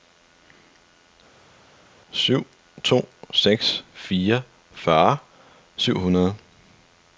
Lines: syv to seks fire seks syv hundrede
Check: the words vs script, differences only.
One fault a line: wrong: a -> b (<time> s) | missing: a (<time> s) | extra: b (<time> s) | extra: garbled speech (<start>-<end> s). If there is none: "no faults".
wrong: seks -> fyrre (4.7 s)